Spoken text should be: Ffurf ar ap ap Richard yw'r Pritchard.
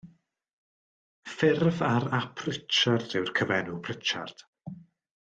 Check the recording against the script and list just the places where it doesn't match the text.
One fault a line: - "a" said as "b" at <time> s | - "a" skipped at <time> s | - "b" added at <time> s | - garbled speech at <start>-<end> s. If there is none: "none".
- "ap" skipped at 2.4 s
- "cyfenw" added at 3.4 s